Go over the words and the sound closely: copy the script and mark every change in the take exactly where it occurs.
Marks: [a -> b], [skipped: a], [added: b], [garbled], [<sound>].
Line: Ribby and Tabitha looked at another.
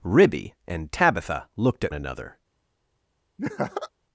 Ribby and Tabitha looked at another. [laugh]